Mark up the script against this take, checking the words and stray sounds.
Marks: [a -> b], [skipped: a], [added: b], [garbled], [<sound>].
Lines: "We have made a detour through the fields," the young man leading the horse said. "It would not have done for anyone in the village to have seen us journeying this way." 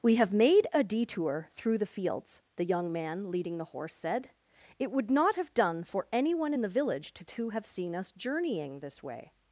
"We have made a detour through the fields," the young man leading the horse said. "It would not have done for anyone in the village to [added: to] have seen us journeying this way."